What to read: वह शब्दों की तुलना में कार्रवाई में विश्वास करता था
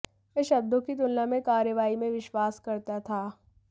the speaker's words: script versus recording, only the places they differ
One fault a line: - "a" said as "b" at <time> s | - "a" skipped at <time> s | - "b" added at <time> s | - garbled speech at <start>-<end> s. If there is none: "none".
none